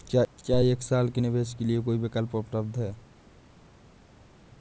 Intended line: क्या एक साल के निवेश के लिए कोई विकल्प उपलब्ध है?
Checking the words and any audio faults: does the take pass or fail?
pass